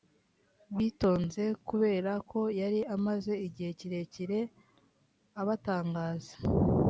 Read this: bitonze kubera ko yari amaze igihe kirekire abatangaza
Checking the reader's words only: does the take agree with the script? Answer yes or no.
yes